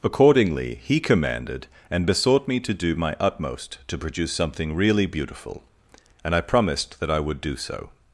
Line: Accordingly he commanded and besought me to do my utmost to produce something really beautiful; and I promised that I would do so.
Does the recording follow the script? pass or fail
pass